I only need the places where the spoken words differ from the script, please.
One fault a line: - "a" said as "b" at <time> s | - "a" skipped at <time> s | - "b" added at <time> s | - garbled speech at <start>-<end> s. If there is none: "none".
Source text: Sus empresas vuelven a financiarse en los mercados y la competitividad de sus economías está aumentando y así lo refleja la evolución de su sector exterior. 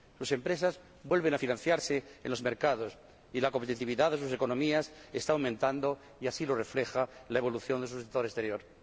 none